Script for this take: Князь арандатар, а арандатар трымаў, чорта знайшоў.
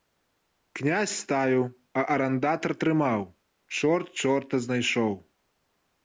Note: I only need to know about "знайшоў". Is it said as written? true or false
true